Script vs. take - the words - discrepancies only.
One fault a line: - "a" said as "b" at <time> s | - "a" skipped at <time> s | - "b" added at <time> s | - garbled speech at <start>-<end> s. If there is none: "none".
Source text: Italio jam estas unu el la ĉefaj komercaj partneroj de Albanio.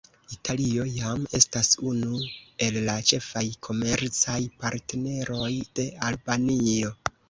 none